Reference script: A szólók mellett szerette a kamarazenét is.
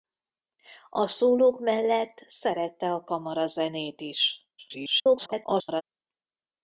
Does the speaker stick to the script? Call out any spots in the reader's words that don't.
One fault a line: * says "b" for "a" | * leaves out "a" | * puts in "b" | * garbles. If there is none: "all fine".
* garbles